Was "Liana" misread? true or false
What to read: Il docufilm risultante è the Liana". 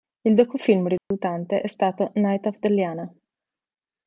false